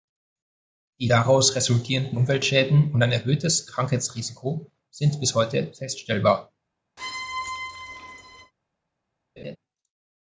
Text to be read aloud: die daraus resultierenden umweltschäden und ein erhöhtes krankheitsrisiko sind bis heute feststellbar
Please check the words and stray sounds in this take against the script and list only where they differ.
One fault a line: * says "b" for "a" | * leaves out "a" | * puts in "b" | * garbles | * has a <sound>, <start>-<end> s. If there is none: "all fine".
* has a squeak, 7.0-8.5 s
* has a laugh, 9.4-9.6 s